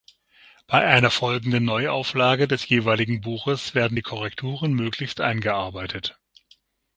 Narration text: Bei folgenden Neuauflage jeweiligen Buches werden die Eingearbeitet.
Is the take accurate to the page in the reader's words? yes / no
no